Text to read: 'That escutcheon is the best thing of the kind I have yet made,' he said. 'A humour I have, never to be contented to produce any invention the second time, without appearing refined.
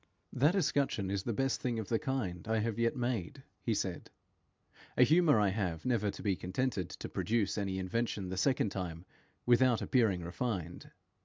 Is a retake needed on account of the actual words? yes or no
no